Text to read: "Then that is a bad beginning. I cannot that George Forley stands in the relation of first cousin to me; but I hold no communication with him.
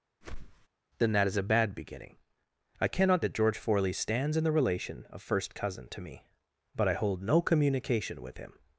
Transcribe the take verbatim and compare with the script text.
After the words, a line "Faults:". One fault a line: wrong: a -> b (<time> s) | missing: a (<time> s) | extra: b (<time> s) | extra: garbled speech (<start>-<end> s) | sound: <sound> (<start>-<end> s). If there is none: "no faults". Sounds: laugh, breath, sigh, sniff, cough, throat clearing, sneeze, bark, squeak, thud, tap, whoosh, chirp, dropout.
"Then that is a bad beginning. I cannot that George Forley stands in the relation of first cousin to me; but I hold no communication with him.
Faults:
sound: whoosh (0.2-0.7 s)